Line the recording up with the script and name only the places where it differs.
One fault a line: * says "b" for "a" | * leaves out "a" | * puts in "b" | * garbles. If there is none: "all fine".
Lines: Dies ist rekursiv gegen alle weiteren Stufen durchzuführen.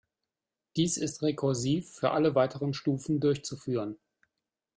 * says "für" for "gegen"